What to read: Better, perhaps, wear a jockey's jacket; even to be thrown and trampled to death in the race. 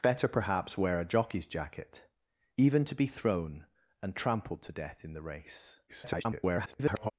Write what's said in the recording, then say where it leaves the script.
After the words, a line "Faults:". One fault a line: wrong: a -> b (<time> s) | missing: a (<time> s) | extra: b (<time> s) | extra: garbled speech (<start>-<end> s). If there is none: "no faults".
Better, perhaps, wear a jockey's jacket; even to be thrown and trampled to death in the race. [garbled]
Faults:
extra: garbled speech (5.9-7.1 s)